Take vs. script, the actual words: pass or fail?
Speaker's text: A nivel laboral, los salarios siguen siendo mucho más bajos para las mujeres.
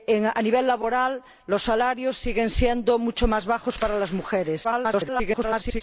fail